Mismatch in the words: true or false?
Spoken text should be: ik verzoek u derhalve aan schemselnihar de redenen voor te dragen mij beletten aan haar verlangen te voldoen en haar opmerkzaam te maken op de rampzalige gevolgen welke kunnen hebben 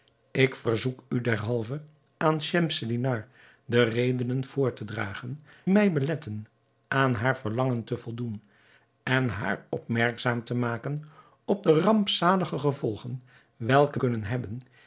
false